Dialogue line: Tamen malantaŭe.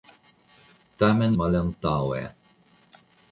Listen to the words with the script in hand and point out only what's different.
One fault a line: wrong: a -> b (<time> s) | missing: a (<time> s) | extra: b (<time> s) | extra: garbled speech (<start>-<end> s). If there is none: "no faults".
no faults